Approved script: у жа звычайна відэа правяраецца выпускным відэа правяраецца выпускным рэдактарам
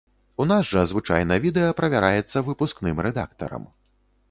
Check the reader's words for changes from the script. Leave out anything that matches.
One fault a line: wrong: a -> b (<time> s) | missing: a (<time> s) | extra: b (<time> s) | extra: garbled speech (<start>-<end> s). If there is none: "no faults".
extra: нас (0.5 s)
missing: відэа правяраецца выпускным (3.0 s)